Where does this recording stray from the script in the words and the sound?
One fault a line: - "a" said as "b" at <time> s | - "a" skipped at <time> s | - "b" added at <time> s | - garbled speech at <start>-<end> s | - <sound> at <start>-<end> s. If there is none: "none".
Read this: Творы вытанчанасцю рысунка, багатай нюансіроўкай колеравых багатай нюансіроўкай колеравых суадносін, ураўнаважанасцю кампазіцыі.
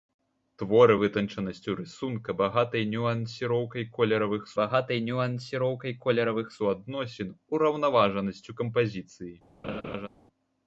- laugh at 9.6-10.1 s